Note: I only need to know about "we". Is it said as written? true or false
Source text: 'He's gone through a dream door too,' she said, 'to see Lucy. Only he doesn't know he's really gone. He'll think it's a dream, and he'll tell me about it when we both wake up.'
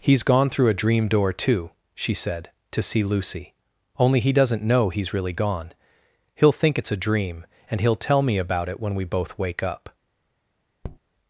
true